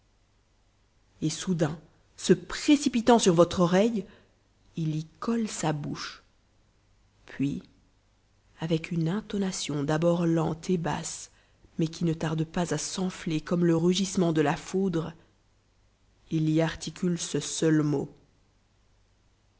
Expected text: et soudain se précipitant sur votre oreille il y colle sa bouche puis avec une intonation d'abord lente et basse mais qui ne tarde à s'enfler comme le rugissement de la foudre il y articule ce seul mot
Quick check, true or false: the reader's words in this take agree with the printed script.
false